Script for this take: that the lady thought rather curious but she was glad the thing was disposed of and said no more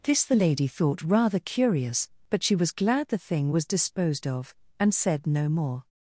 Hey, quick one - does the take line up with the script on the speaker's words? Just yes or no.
no